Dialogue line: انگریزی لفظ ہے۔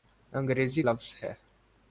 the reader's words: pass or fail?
pass